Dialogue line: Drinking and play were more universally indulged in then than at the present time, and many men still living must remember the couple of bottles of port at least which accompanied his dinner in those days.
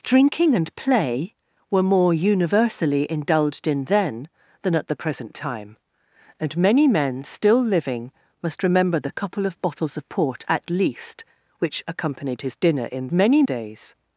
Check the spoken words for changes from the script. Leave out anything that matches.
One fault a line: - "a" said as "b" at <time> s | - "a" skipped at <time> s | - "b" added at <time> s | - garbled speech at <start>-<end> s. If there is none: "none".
- "those" said as "many" at 13.1 s